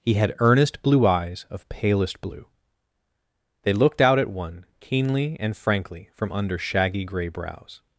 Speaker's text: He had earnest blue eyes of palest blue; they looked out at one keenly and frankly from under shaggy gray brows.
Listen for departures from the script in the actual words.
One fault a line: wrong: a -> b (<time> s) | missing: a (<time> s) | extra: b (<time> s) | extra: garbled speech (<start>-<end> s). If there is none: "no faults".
no faults